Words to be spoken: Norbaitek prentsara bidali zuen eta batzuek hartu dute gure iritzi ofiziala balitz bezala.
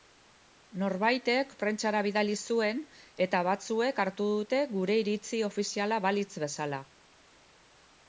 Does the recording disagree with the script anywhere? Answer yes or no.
no